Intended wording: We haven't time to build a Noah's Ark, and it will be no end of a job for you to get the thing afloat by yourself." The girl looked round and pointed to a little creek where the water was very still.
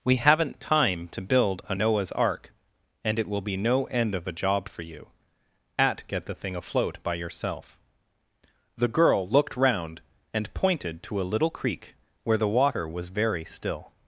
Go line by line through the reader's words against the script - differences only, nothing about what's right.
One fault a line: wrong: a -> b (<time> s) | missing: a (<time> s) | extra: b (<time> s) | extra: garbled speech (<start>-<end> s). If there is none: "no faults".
wrong: to -> at (5.8 s)